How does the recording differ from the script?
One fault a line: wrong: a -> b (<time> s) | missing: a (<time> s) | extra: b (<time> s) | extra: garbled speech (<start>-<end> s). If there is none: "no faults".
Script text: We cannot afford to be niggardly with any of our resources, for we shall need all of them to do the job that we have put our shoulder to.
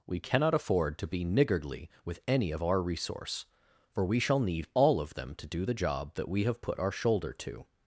wrong: resources -> resource (2.8 s)